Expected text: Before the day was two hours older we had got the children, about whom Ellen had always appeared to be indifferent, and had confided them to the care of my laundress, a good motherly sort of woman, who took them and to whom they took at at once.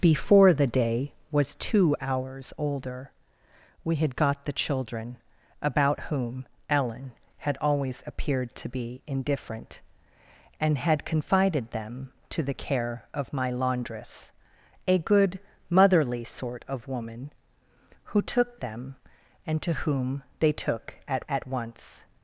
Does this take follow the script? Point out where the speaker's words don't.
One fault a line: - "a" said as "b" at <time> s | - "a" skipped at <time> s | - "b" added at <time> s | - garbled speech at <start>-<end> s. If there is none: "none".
none